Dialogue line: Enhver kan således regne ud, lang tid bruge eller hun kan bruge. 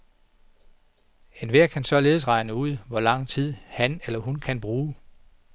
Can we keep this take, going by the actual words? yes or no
no